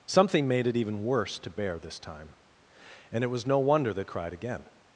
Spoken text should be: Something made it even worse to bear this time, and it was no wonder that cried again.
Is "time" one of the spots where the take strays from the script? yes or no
no